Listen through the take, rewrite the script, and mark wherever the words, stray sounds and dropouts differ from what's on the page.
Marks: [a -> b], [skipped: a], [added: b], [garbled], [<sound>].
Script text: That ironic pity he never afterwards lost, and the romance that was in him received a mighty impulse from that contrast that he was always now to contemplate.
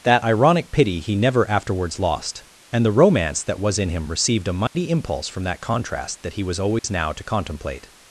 That ironic pity he never afterwards lost, and the romance that was in him received a mighty [dropout] impulse from that contrast that he was always [dropout] now to contemplate.